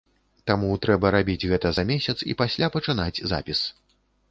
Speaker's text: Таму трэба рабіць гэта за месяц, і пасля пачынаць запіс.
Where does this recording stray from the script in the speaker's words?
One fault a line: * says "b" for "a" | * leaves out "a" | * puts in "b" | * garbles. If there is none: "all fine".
all fine